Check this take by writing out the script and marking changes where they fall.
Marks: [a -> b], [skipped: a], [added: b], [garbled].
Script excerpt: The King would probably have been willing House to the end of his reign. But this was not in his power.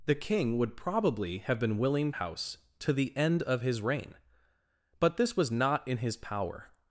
The King would probably have been willing House to the end of his reign. But this was not in his power.